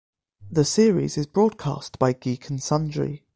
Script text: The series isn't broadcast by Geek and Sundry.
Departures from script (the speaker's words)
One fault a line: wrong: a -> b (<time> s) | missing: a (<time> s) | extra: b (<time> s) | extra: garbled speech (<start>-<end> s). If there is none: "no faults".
wrong: isn't -> is (1.2 s)